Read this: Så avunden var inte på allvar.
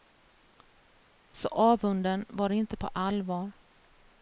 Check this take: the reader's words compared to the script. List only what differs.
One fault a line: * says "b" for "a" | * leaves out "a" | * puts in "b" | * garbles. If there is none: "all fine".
all fine